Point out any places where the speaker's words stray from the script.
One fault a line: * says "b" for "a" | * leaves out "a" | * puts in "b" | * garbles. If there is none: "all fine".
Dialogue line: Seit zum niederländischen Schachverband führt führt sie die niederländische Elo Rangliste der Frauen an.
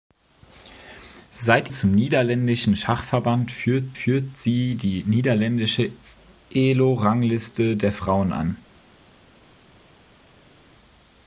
all fine